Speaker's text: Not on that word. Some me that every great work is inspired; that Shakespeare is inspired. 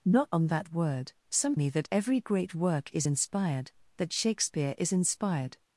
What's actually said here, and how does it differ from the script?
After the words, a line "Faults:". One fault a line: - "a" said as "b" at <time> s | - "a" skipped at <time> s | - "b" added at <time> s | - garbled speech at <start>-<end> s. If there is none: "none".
Not on that word. Some me that every great work is inspired; that Shakespeare is inspired.
Faults:
none